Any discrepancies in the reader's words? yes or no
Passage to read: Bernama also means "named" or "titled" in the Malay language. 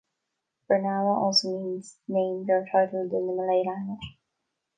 no